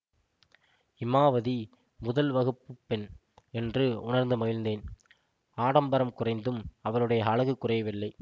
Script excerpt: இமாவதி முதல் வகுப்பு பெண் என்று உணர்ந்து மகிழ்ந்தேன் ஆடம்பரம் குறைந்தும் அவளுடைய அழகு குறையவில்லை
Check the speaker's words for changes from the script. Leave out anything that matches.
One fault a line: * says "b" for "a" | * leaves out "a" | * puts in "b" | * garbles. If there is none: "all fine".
all fine